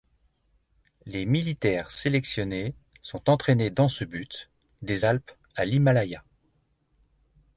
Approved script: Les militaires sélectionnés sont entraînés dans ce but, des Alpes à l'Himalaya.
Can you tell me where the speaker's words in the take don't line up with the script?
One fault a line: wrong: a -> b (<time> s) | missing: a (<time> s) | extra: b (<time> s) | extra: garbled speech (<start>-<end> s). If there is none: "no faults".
no faults